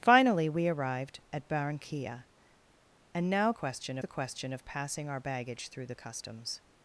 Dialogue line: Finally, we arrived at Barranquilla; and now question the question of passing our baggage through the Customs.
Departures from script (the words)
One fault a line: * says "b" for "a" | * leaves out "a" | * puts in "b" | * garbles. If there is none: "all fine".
all fine